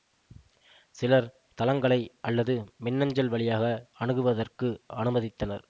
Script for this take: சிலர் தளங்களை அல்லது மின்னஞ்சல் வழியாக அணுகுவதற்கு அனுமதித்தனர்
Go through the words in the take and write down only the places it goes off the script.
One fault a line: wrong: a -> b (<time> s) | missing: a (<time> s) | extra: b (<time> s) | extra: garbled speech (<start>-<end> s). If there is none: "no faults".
no faults